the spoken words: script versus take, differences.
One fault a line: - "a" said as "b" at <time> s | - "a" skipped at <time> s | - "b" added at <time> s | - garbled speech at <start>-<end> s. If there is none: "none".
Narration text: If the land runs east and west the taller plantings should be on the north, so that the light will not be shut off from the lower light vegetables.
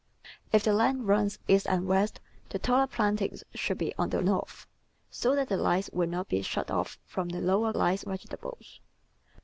none